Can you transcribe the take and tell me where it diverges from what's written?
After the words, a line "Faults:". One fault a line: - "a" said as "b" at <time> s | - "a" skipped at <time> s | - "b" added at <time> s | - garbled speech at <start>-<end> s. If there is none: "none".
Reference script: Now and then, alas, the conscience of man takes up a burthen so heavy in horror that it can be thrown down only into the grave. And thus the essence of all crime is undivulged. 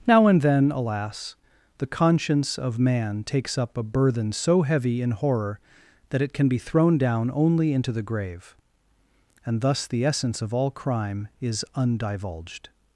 Now and then, alas, the conscience of man takes up a burthen so heavy in horror that it can be thrown down only into the grave. And thus the essence of all crime is undivulged.
Faults:
none